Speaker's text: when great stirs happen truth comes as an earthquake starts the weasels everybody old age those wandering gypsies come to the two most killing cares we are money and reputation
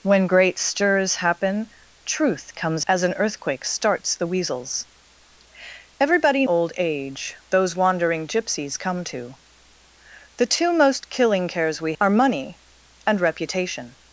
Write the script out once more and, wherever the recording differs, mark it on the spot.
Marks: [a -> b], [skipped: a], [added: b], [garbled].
when great stirs happen truth comes as an earthquake starts the weasels everybody old age those wandering gypsies come to the two most killing cares we are money and reputation